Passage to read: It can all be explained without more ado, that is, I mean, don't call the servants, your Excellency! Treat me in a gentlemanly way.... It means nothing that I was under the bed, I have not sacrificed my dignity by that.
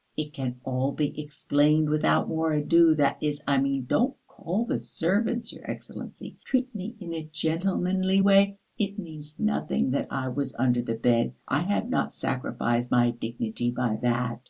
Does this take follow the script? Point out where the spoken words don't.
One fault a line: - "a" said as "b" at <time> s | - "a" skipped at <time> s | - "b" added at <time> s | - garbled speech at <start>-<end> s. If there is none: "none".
none